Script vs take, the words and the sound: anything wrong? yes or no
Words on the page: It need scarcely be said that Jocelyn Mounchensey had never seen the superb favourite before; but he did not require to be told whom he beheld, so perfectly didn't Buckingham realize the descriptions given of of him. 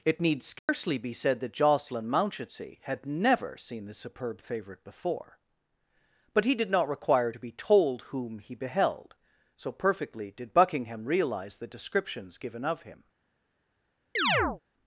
yes